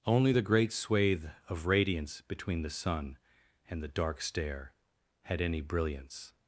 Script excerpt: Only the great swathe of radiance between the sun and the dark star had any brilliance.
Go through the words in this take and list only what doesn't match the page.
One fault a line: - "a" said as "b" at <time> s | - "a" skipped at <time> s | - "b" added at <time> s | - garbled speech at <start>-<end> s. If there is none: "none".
- "star" said as "stair" at 4.2 s